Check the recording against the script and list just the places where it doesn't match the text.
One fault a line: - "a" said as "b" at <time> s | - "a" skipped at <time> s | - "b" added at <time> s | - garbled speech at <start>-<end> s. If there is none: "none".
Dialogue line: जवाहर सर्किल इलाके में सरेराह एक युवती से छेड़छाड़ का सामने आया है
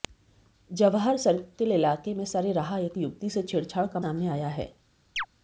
none